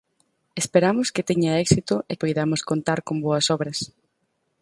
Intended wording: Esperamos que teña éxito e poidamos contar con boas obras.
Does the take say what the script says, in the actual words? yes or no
yes